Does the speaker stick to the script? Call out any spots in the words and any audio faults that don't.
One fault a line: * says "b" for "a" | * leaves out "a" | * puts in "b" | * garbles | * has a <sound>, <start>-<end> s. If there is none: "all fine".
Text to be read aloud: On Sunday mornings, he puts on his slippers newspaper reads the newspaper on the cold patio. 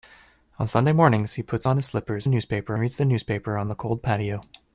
all fine